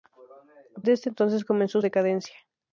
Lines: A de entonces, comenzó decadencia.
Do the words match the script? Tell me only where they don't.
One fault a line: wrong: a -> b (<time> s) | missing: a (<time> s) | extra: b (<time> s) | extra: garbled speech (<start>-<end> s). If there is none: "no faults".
no faults